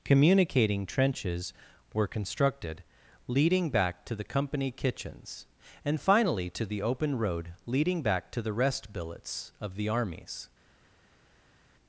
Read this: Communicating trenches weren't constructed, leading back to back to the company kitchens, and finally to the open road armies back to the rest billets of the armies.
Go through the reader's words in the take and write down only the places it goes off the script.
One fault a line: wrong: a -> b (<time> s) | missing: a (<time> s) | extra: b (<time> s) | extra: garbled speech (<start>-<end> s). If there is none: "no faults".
wrong: weren't -> were (1.9 s)
missing: back to (4.2 s)
wrong: armies -> leading (7.7 s)